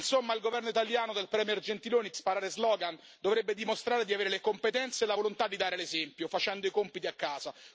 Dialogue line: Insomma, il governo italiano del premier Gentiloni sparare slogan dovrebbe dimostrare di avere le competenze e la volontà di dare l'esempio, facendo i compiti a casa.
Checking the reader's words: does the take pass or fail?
pass